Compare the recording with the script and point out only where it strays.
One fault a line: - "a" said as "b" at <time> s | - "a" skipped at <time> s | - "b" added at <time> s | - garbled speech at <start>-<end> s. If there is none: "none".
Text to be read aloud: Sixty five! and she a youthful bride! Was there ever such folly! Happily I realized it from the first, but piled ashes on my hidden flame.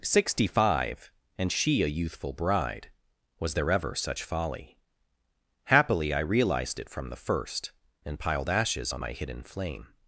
- "but" said as "and" at 8.0 s